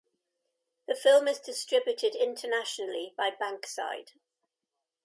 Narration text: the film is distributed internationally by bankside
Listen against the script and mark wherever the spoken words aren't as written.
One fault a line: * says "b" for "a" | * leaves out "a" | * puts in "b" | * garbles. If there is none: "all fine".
all fine